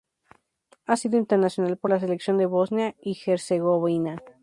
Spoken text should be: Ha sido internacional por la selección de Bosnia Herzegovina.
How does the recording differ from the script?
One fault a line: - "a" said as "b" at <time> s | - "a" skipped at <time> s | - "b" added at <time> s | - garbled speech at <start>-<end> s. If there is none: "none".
- "y" added at 3.0 s